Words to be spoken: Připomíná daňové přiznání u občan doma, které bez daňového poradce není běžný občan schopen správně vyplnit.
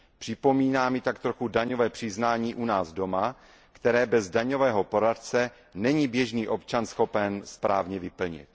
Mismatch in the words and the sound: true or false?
true